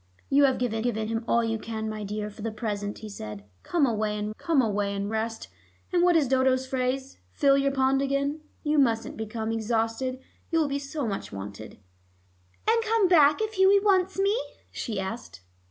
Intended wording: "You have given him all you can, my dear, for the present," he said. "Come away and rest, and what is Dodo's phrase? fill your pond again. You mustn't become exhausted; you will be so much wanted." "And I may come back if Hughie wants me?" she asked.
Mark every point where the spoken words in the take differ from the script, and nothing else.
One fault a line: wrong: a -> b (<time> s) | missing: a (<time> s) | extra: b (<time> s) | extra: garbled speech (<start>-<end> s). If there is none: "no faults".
extra: given (0.8 s)
extra: come away and (4.4 s)
missing: I (12.8 s)